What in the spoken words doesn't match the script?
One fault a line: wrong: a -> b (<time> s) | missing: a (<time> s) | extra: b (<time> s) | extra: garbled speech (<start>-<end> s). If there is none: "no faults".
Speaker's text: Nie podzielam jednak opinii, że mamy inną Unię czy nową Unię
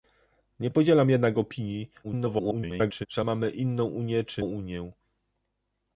extra: garbled speech (2.0-3.1 s)
missing: nową (4.4 s)